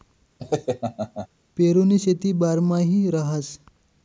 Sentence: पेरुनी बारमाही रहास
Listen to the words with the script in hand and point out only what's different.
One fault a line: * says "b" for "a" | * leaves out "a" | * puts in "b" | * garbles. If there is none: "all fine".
* puts in "शेती"